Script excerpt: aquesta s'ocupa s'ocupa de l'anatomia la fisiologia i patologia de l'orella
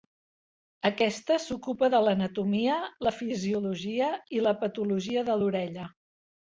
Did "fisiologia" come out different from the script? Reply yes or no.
no